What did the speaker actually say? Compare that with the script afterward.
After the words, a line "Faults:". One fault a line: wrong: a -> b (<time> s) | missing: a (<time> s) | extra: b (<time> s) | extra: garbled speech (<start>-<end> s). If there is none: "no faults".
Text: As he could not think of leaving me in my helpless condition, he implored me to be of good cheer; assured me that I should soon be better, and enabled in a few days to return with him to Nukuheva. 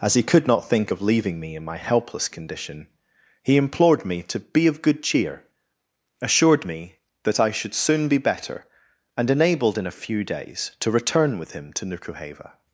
As he could not think of leaving me in my helpless condition, he implored me to be of good cheer; assured me that I should soon be better, and enabled in a few days to return with him to Nukuheva.
Faults:
no faults